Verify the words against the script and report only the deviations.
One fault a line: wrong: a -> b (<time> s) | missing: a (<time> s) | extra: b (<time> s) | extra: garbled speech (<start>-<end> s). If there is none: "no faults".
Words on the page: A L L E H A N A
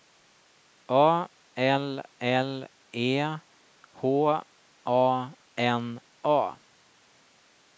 no faults